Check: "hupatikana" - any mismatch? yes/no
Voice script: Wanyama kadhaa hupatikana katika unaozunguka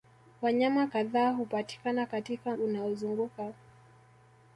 no